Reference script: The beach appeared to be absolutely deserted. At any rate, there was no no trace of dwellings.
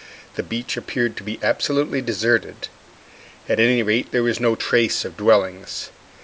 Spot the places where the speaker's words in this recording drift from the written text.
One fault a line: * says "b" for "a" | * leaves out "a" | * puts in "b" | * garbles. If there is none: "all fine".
* leaves out "no"